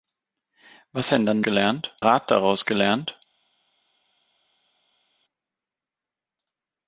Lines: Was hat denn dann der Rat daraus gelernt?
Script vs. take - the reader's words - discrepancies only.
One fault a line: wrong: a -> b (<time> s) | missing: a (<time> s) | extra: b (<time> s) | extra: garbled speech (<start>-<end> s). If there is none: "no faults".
missing: hat (1.1 s)
wrong: der -> gelernt (1.4 s)